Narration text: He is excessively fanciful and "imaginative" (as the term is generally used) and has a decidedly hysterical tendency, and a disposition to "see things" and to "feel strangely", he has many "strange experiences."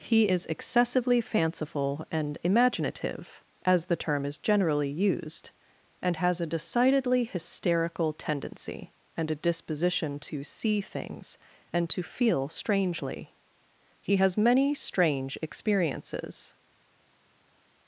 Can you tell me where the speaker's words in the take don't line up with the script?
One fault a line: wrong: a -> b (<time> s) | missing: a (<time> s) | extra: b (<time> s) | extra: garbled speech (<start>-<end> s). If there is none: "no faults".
no faults